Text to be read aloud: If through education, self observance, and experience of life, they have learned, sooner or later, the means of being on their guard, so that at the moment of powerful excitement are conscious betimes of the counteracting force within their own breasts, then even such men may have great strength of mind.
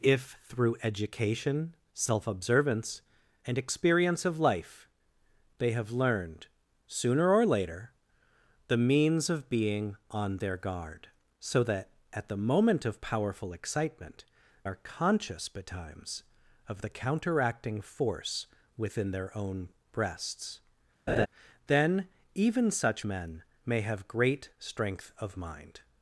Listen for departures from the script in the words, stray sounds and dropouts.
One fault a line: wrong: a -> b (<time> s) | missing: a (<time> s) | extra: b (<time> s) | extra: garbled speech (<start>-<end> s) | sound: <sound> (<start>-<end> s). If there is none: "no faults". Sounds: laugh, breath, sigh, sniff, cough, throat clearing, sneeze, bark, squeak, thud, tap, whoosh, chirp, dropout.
sound: laugh (21.1-21.3 s)